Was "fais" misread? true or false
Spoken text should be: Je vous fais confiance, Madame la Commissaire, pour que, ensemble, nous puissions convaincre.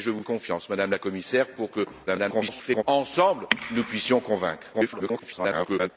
true